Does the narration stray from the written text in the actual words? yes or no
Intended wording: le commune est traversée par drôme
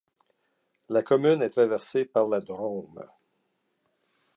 yes